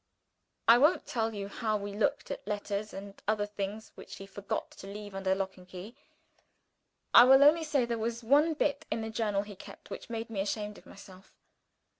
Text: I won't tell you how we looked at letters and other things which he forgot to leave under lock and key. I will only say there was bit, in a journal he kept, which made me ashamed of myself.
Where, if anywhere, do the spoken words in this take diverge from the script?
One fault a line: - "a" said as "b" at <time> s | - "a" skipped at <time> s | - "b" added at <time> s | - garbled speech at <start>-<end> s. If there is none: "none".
- "one" added at 8.2 s